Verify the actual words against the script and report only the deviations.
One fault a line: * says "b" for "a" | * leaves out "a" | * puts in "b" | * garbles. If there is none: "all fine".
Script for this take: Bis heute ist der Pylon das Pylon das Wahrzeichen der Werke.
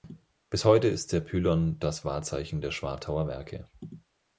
* leaves out "Pylon das"
* puts in "Schwartauer"